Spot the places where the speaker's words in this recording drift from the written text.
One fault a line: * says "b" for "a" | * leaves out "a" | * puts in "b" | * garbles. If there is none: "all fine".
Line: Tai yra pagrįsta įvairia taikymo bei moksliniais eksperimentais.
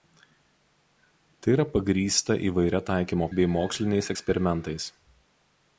all fine